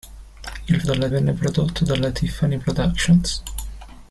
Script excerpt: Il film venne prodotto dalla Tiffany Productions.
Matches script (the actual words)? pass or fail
fail